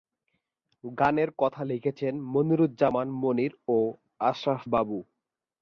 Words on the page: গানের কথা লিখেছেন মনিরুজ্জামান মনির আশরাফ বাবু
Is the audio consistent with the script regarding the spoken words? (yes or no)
no